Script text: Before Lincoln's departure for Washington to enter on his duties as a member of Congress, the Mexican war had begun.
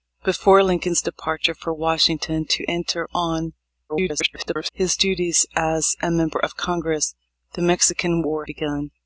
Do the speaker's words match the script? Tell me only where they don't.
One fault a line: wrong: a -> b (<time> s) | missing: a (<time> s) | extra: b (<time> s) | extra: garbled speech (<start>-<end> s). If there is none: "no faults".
extra: garbled speech (3.9-4.7 s)
missing: had (8.5 s)